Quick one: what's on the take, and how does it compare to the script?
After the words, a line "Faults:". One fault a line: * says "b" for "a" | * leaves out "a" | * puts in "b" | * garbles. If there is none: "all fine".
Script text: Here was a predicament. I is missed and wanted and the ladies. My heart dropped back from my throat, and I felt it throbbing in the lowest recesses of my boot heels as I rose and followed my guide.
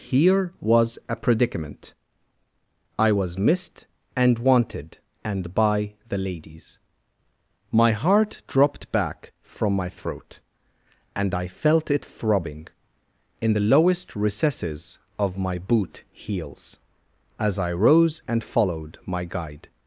Here was a predicament. I was missed and wanted and by the ladies. My heart dropped back from my throat, and I felt it throbbing in the lowest recesses of my boot heels as I rose and followed my guide.
Faults:
* says "was" for "is"
* puts in "by"